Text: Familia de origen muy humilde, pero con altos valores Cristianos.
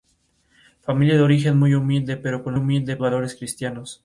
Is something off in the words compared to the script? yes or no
yes